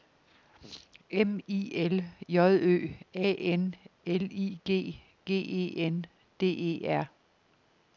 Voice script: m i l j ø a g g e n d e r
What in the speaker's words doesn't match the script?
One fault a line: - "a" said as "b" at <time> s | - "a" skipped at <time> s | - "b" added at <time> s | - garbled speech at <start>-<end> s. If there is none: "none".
- "n l i" added at 3.6 s